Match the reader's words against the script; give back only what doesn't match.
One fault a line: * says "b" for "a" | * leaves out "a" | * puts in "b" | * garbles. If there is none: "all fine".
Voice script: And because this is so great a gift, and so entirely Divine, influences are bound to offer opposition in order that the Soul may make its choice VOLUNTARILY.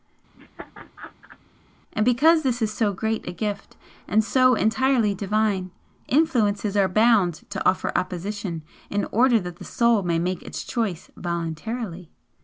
all fine